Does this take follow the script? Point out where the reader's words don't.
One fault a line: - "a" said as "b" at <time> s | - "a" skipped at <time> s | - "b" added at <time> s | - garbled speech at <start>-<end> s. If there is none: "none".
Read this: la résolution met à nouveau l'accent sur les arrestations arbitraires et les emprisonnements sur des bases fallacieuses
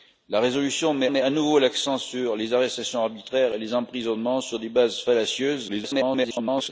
- "met" added at 1.1 s
- garbled speech at 5.7-6.7 s